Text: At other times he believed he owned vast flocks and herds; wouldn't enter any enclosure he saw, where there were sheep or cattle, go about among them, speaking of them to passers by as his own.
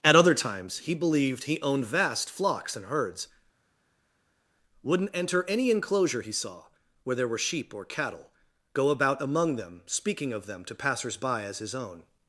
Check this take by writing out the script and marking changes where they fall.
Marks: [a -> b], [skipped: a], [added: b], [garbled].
At other times he believed he owned vast flocks and herds; wouldn't enter any enclosure he saw, where there were sheep or cattle, go about among them, speaking of them to passers by as his own.